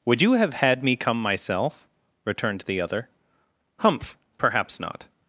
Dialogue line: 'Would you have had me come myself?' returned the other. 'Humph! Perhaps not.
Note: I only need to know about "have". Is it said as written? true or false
true